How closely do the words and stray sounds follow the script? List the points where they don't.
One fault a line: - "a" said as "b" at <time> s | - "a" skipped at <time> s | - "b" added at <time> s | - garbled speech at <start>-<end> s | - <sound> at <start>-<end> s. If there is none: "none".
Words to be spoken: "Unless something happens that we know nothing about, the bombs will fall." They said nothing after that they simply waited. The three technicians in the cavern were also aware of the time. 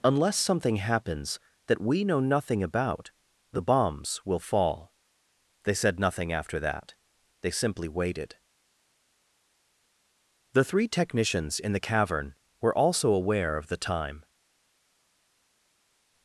none